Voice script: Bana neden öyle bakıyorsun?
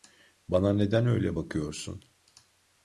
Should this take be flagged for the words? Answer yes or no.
no